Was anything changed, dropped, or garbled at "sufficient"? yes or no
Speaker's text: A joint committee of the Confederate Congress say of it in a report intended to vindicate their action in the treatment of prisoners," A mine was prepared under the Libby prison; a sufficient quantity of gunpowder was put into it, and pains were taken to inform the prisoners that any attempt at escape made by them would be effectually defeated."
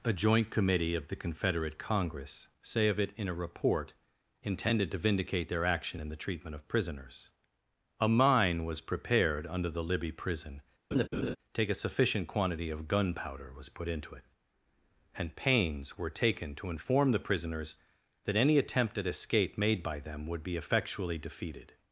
no